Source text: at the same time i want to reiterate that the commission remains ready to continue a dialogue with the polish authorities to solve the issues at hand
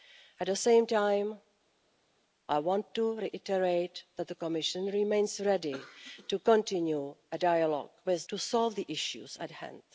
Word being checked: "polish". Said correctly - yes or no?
no